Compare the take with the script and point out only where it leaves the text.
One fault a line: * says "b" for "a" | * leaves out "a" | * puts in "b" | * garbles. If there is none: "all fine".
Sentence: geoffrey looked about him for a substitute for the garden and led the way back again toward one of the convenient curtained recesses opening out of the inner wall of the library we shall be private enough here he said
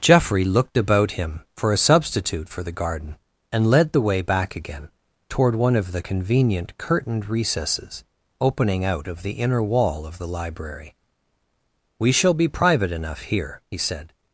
all fine